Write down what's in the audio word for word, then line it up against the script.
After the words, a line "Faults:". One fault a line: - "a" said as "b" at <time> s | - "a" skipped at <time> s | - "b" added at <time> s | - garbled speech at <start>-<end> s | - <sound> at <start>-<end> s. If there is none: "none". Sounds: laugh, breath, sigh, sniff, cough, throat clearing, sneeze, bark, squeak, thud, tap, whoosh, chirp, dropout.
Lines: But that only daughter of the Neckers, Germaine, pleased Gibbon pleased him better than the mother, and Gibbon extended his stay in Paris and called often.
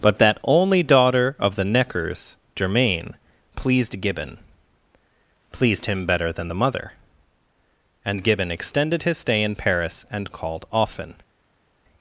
But that only daughter of the Neckers, Germaine, pleased Gibbon pleased him better than the mother, and Gibbon extended his stay in Paris and called often.
Faults:
none